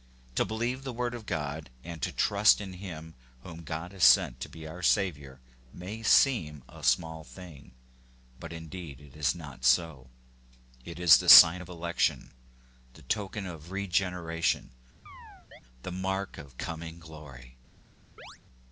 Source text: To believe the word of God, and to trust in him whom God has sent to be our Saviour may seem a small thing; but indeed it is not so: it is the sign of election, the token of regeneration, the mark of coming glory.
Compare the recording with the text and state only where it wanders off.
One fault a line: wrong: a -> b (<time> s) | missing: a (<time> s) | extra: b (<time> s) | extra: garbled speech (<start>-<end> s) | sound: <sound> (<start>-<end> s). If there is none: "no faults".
sound: chirp (15.1-15.6 s)
sound: chirp (18.2-18.4 s)